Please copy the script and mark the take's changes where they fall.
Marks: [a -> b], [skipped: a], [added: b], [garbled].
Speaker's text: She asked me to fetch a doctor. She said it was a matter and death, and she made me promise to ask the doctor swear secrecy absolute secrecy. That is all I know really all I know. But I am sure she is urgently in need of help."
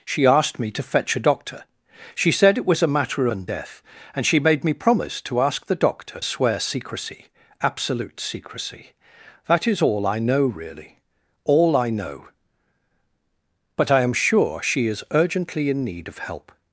She asked me to fetch a doctor. She said it was a matter and death, and she made me promise to ask the doctor swear secrecy absolute secrecy. That is all I know really all I know. But I am sure she is urgently in need of help."